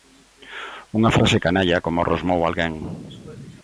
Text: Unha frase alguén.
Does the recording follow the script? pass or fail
fail